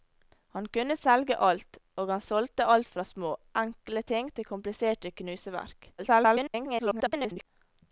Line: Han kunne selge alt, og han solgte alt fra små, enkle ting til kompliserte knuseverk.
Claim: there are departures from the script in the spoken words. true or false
true